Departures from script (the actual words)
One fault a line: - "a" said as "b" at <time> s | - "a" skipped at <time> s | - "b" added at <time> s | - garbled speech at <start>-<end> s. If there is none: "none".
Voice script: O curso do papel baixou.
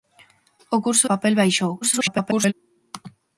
- "do" skipped at 1.1 s
- garbled speech at 1.8-2.5 s